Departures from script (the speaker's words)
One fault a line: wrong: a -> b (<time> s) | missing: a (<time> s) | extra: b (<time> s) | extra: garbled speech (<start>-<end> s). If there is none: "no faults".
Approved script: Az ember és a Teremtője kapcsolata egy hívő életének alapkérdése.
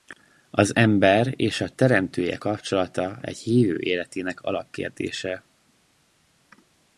no faults